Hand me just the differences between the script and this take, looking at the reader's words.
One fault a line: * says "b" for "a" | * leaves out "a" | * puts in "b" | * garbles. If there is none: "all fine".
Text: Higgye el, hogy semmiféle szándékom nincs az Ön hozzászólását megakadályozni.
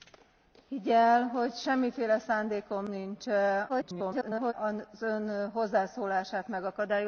* garbles